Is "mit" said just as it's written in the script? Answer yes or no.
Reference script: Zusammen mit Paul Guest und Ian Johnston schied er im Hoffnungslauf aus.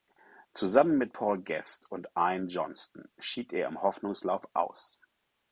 yes